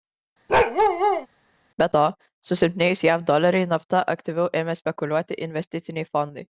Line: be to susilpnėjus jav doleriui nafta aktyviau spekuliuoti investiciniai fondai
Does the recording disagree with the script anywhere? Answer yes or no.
yes